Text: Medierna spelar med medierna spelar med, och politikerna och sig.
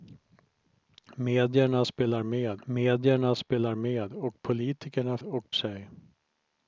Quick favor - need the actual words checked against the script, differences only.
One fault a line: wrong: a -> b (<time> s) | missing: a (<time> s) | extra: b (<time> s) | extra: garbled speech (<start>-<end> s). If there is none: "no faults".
no faults